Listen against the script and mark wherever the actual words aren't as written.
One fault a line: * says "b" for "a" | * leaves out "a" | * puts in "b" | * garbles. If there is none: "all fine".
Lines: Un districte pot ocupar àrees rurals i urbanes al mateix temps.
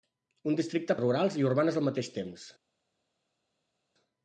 * leaves out "pot ocupar àrees"